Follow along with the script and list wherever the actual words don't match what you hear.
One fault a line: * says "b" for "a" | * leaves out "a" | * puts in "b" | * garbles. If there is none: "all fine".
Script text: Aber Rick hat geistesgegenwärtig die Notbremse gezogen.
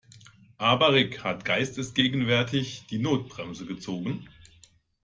all fine